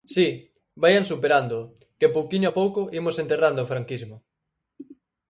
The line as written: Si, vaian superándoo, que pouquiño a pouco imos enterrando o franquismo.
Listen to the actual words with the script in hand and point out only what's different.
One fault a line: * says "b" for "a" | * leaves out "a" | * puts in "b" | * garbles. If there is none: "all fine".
all fine